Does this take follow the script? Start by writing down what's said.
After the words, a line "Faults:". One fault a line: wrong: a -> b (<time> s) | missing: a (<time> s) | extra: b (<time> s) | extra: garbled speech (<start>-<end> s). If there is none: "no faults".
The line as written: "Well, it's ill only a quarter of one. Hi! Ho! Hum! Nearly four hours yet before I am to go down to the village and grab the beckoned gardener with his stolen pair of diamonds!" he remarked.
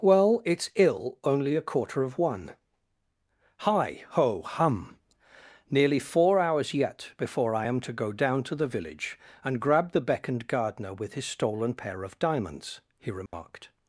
"Well, it's ill only a quarter of one. Hi! Ho! Hum! Nearly four hours yet before I am to go down to the village and grab the beckoned gardener with his stolen pair of diamonds!" he remarked.
Faults:
no faults